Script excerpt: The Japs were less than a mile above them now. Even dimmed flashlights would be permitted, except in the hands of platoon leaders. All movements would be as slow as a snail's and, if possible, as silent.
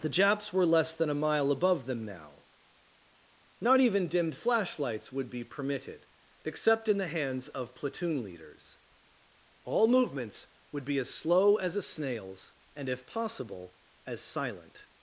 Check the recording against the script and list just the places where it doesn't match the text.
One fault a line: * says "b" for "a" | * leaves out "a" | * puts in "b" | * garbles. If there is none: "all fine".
* puts in "Not"